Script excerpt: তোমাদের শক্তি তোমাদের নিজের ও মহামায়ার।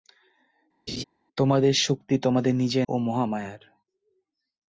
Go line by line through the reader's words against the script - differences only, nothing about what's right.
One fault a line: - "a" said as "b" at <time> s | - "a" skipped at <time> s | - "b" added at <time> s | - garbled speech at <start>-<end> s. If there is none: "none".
none